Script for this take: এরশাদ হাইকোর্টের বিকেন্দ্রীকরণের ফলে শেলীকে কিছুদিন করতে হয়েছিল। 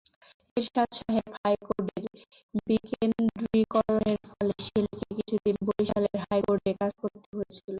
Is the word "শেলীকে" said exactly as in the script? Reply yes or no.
yes